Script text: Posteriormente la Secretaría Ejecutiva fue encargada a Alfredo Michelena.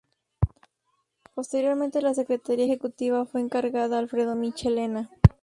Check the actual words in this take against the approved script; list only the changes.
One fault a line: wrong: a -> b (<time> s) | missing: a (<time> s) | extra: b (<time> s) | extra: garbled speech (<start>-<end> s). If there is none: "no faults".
no faults